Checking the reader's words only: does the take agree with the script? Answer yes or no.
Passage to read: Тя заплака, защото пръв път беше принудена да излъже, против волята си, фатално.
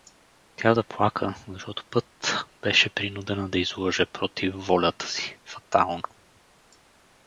no